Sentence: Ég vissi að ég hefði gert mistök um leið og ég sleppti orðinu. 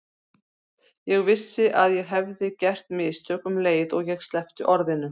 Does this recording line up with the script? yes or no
yes